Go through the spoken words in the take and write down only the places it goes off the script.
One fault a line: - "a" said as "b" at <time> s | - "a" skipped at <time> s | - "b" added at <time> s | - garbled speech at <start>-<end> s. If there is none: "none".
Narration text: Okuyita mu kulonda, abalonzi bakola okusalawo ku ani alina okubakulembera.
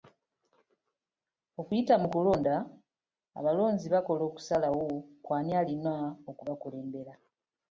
none